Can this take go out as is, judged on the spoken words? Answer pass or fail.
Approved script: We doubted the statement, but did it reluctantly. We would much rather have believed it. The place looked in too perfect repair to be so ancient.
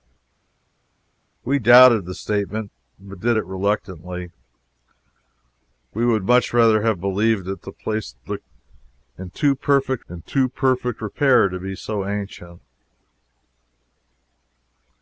fail